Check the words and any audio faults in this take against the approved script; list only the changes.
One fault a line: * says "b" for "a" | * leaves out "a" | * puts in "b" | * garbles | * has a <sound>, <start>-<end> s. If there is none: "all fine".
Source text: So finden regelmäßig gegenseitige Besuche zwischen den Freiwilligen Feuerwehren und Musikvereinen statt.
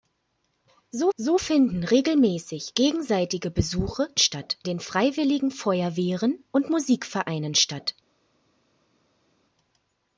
* puts in "so"
* says "statt" for "zwischen"